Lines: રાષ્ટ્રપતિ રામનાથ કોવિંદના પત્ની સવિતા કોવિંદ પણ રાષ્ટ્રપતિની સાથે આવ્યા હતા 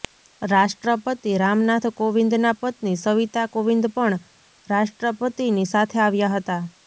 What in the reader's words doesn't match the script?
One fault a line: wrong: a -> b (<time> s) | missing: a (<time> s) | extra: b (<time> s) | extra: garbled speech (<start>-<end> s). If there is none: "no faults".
no faults